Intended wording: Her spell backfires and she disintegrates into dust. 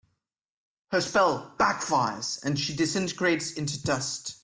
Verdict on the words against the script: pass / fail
pass